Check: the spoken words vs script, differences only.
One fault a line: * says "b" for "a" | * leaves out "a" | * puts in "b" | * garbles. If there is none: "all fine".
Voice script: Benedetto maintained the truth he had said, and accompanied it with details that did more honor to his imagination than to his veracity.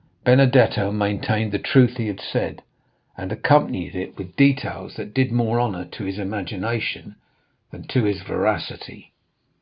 all fine